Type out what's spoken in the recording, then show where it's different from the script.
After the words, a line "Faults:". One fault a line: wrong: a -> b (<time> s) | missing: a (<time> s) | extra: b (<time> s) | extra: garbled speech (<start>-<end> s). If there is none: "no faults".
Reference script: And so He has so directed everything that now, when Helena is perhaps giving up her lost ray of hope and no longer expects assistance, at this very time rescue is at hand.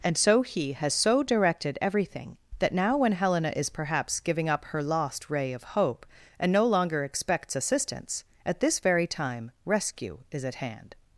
And so He has so directed everything that now, when Helena is perhaps giving up her lost ray of hope and no longer expects assistance, at this very time rescue is at hand.
Faults:
no faults